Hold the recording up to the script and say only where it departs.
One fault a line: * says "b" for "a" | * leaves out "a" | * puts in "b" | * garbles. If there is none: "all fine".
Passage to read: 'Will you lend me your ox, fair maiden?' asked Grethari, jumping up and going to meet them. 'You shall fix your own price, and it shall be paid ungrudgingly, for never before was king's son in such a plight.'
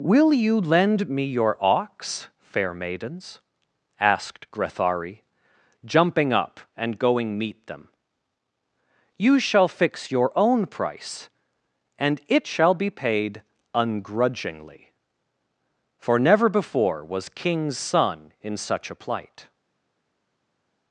* says "maidens" for "maiden"
* leaves out "to"